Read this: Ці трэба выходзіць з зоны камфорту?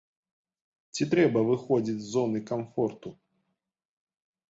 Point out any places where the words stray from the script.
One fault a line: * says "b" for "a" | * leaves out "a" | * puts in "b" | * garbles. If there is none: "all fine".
all fine